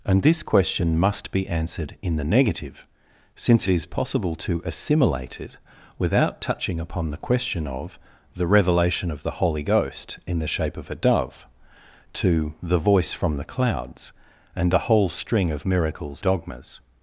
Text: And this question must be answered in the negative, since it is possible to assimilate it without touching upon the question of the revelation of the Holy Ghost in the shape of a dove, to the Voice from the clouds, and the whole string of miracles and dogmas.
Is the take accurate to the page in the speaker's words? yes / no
no